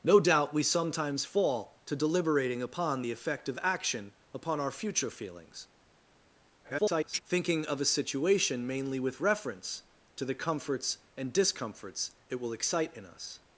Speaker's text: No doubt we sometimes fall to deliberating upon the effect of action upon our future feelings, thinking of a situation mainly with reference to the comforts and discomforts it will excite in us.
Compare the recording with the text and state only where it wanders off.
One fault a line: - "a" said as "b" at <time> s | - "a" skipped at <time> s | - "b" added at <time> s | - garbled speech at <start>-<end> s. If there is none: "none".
- garbled speech at 6.6-7.2 s